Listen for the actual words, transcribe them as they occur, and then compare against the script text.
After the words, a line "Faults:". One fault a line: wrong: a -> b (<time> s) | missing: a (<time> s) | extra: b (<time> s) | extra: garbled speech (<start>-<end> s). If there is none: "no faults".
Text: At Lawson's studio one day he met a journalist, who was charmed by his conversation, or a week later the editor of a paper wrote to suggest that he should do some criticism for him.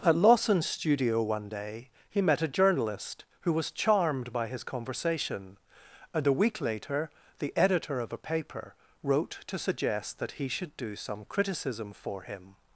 At Lawson's studio one day he met a journalist, who was charmed by his conversation, and a week later the editor of a paper wrote to suggest that he should do some criticism for him.
Faults:
wrong: or -> and (6.1 s)